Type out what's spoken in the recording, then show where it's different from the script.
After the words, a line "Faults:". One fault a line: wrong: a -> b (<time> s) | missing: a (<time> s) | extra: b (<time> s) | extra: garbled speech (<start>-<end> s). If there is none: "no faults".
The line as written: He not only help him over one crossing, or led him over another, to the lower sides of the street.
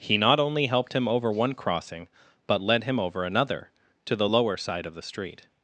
He not only helped him over one crossing, but led him over another, to the lower side of the street.
Faults:
wrong: help -> helped (0.7 s)
wrong: or -> but (2.5 s)
wrong: sides -> side (4.6 s)